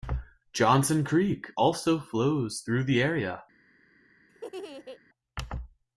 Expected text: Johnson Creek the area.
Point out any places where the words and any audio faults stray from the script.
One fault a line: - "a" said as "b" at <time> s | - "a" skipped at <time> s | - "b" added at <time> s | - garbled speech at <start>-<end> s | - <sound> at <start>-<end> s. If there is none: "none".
- "also flows through" added at 1.6 s
- laugh at 4.3-5.0 s